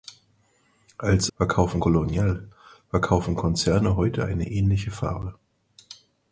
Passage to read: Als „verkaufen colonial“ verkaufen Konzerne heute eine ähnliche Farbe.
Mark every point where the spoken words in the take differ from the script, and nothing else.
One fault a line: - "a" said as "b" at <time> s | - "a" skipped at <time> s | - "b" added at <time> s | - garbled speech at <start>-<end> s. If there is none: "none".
none